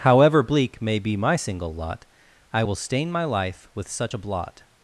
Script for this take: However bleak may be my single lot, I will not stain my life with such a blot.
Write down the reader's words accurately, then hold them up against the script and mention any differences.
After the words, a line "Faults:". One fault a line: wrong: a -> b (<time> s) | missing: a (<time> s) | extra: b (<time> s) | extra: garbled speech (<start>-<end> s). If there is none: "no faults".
However bleak may be my single lot, I will stain my life with such a blot.
Faults:
missing: not (2.7 s)